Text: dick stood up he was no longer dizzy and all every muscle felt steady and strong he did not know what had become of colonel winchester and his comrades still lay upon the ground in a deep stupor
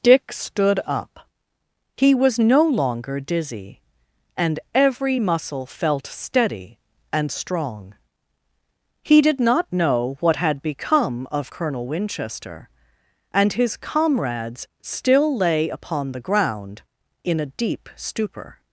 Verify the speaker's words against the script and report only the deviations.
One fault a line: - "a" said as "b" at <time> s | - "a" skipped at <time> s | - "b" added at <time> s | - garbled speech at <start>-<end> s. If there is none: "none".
- "all" skipped at 4.6 s